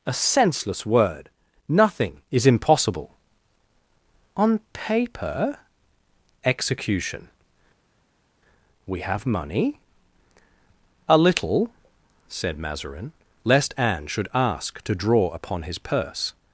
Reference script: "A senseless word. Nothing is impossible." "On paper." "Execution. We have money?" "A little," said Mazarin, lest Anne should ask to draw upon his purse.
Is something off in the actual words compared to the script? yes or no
no